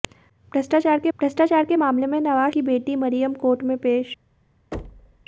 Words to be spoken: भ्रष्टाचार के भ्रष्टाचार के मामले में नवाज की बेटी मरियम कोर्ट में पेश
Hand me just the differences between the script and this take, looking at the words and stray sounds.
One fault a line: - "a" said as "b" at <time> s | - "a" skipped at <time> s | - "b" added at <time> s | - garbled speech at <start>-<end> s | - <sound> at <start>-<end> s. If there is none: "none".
- thud at 4.7-5.2 s